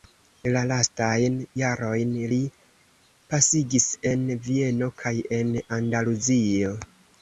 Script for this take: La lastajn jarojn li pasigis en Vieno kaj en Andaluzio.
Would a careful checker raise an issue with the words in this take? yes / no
no